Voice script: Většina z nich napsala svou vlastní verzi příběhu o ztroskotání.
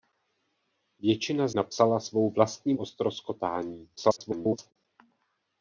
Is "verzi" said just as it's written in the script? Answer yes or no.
no